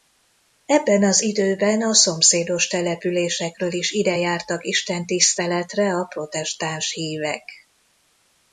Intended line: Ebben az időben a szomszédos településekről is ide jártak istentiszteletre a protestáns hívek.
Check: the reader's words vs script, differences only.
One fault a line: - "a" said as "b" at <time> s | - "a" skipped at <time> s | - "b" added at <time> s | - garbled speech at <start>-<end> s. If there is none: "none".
none